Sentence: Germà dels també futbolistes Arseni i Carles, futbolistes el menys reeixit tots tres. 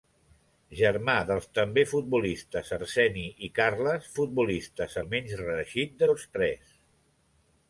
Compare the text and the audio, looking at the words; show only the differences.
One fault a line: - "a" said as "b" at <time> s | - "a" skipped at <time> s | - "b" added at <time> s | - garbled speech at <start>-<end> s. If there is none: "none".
none